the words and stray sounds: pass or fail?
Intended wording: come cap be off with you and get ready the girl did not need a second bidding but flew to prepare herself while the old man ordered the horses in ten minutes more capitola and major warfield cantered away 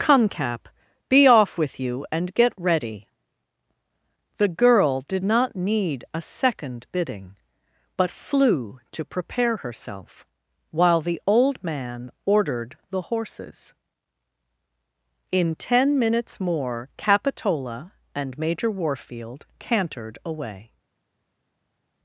pass